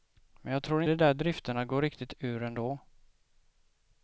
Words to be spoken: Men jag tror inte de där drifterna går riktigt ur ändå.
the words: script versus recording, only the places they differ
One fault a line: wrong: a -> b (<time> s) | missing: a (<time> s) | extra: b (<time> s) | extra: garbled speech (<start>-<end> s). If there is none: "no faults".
missing: inte (0.8 s)